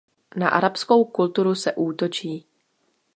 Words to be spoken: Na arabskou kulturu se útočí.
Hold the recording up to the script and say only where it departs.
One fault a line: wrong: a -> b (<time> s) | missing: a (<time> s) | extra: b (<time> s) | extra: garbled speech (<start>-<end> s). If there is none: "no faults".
no faults